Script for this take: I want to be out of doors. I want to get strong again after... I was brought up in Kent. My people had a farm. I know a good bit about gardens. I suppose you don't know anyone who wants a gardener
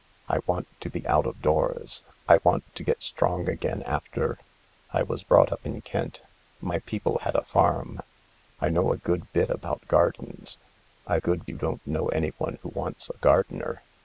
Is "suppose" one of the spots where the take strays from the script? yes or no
yes